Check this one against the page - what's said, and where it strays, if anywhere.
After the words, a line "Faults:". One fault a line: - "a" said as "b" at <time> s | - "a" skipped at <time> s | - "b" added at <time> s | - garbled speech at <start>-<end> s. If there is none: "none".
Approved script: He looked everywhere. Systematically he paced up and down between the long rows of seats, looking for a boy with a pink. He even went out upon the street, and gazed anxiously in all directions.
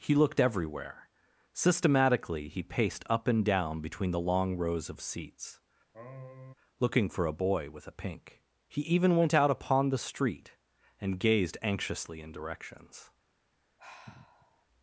He looked everywhere. Systematically he paced up and down between the long rows of seats, looking for a boy with a pink. He even went out upon the street, and gazed anxiously in directions.
Faults:
- "all" skipped at 12.3 s